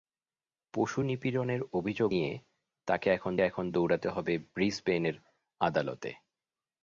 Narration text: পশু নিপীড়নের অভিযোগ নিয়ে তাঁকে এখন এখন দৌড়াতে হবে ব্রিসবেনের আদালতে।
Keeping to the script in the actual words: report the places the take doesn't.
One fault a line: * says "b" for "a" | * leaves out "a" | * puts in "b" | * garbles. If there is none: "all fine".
all fine